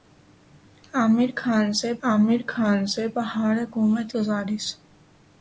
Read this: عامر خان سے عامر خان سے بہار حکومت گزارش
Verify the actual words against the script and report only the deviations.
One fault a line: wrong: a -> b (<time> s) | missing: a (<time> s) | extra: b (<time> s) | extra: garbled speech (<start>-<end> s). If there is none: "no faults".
no faults